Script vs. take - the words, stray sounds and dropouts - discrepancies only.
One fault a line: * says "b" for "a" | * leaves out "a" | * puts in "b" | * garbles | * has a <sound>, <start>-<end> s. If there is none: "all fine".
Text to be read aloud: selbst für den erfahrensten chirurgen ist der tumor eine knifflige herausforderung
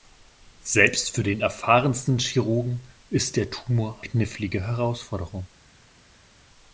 * leaves out "eine"